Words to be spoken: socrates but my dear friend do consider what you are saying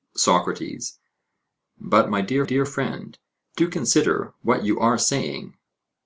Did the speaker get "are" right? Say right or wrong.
right